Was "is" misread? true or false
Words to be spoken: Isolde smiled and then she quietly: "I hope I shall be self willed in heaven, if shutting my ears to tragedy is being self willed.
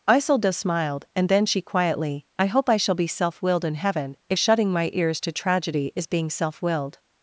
false